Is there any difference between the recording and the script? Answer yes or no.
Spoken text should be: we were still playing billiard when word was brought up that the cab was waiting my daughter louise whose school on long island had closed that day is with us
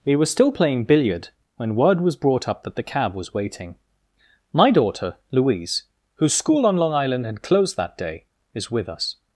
no